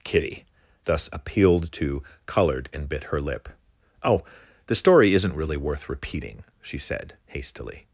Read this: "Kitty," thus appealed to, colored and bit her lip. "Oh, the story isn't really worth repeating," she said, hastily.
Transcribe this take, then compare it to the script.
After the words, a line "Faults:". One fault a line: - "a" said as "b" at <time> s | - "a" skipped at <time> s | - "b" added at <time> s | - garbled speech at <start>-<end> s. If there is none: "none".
"Kitty," thus appealed to, colored and bit her lip. "Oh, the story isn't really worth repeating," she said, hastily.
Faults:
none